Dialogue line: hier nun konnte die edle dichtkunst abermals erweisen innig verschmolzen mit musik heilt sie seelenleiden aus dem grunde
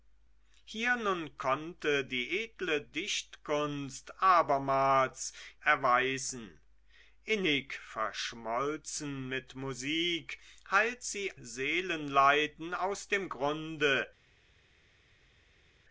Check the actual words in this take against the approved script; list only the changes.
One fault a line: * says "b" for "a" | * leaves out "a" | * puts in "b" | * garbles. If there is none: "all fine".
all fine